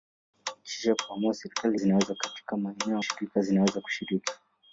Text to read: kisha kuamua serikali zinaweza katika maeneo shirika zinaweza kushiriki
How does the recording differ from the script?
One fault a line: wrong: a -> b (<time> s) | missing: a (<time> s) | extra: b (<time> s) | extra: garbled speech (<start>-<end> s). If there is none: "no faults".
no faults